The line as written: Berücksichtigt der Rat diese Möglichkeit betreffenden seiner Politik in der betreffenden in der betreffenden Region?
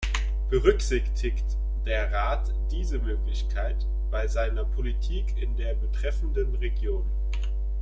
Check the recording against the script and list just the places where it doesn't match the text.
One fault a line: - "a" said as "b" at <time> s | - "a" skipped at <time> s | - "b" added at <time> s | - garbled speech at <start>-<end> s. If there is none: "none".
- "betreffenden" said as "bei" at 4.1 s
- "in der betreffenden" skipped at 6.5 s